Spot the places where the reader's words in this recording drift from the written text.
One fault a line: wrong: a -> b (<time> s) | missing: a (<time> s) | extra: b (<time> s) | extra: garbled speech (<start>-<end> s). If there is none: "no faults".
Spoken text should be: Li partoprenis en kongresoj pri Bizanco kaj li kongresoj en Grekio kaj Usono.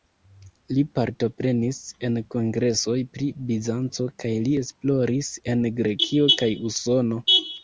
wrong: kongresoj -> esploris (4.6 s)